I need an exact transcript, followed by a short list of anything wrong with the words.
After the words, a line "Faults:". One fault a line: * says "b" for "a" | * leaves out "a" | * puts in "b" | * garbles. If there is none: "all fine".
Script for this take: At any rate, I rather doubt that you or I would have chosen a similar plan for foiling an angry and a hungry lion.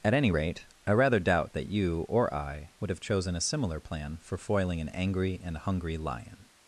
At any rate, I rather doubt that you or I would have chosen a similar plan for foiling an angry and hungry lion.
Faults:
* leaves out "a"